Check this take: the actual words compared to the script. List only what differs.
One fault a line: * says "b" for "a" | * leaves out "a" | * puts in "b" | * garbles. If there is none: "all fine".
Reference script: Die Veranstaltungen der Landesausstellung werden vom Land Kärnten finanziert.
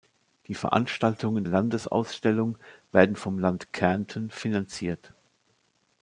* leaves out "der"